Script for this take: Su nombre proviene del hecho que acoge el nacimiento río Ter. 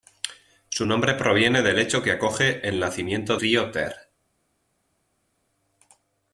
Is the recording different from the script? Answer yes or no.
no